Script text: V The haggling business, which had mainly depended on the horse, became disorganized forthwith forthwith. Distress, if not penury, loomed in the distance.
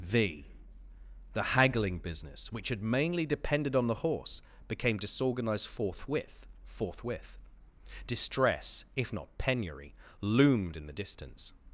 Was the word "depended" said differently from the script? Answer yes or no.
no